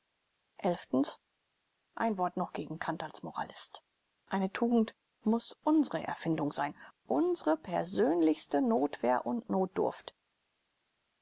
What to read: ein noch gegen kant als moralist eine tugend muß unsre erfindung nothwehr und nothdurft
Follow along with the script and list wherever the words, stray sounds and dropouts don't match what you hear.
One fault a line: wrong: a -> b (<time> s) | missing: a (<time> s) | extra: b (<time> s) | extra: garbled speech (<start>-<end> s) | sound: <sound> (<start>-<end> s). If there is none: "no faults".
extra: wort (2.2 s)
extra: sein unsre persönlichste (6.5 s)